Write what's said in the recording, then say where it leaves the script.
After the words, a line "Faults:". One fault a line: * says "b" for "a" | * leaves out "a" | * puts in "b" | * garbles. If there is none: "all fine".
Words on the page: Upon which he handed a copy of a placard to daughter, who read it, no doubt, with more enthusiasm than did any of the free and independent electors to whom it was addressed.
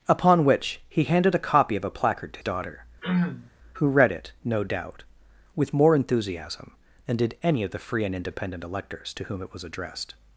Upon which he handed a copy of a placard to daughter, who read it, no doubt, with more enthusiasm than did any of the free and independent electors to whom it was addressed.
Faults:
all fine